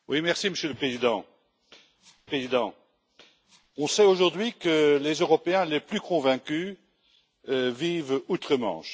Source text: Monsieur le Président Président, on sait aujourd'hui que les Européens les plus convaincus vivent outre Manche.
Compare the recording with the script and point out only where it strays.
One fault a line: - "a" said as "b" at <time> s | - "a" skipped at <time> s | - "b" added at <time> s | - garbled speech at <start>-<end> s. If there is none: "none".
none